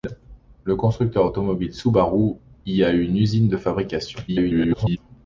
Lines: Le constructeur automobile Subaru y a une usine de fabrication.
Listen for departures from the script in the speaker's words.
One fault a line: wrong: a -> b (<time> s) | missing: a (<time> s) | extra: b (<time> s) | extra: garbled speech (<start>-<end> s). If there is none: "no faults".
extra: garbled speech (4.3-5.0 s)